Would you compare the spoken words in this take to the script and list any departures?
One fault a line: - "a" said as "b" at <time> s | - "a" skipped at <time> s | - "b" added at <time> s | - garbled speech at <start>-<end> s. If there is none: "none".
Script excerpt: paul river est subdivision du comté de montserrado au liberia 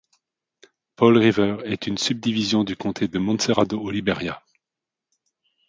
- "une" added at 1.9 s